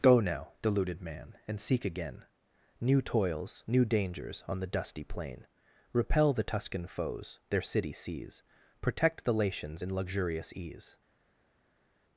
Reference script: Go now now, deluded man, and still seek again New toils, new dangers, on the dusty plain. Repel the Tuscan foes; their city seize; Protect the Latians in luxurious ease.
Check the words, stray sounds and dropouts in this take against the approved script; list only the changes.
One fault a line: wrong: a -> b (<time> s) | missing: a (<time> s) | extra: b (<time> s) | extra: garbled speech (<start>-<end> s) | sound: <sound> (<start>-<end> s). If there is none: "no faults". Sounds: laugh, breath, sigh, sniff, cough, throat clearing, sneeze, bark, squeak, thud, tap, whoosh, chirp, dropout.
missing: now (0.5 s)
missing: still (1.6 s)